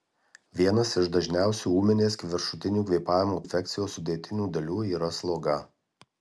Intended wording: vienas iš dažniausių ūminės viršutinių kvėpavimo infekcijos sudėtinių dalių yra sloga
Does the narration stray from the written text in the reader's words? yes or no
no